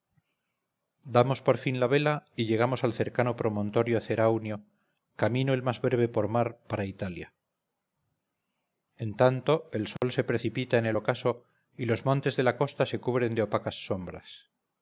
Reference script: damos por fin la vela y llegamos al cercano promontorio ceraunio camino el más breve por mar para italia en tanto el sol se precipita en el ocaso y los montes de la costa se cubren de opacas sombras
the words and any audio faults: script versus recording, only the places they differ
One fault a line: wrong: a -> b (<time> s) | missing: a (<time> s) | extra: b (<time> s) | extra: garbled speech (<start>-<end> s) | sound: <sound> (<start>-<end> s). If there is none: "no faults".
sound: dropout (10.0-10.0 s)